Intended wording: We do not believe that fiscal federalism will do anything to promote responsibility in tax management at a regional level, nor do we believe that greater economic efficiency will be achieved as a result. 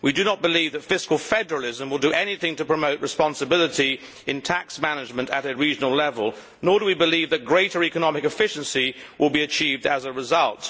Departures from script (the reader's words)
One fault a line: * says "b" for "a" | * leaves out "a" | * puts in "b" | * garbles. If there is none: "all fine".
all fine